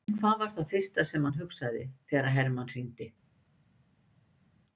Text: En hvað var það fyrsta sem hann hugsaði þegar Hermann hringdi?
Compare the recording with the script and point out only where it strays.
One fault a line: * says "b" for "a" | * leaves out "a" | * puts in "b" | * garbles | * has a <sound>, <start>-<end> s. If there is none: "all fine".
all fine